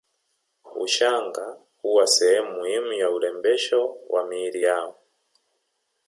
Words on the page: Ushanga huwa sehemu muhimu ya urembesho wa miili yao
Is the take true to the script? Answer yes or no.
yes